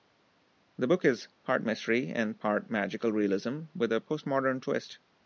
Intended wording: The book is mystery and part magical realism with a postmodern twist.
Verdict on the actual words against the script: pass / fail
fail